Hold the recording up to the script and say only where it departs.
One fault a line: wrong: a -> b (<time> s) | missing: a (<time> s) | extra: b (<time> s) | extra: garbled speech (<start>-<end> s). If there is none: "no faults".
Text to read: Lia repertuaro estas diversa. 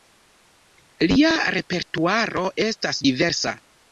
no faults